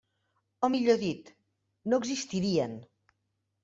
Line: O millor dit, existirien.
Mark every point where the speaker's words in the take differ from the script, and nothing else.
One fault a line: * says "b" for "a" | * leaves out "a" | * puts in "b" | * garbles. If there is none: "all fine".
* puts in "no"